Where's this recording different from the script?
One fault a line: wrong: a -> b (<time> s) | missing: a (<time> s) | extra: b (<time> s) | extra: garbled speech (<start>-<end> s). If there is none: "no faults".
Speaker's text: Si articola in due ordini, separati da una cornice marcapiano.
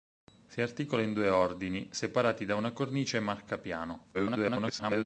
extra: garbled speech (4.1-5.0 s)